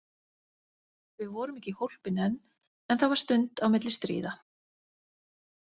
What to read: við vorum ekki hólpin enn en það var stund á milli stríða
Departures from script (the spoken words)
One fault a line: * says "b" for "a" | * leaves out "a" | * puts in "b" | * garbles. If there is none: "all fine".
all fine